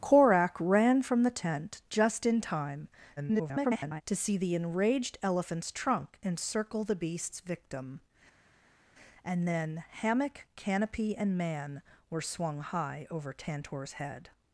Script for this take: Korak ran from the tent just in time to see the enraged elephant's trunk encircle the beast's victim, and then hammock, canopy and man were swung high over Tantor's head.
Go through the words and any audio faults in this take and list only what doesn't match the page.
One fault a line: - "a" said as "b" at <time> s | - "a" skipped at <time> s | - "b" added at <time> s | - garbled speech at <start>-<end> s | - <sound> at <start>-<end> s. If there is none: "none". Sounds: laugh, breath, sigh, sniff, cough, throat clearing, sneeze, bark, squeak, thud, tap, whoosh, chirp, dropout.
- garbled speech at 3.2-4.0 s